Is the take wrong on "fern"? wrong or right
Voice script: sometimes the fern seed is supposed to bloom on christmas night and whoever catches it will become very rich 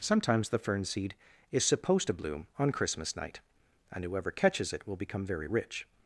right